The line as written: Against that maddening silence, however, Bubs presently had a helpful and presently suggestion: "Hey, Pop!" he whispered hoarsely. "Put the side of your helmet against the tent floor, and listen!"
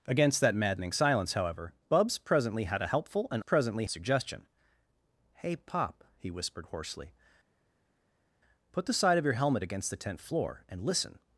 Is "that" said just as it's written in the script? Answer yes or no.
yes